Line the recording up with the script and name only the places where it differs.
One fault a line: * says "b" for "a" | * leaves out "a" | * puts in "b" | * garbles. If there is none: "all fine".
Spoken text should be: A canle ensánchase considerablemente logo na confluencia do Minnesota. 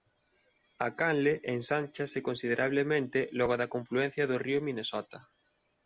* says "da" for "na"
* puts in "río"